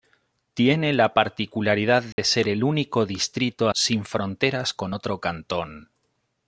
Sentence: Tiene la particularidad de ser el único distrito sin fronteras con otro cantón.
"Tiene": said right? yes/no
yes